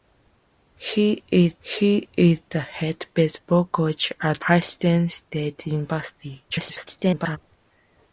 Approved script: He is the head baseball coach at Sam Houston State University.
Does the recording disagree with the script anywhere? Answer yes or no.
yes